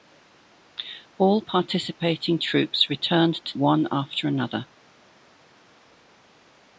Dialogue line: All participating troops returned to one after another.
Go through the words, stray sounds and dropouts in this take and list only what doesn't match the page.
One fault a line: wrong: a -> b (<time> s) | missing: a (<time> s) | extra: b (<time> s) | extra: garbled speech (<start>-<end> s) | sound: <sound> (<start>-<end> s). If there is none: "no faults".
no faults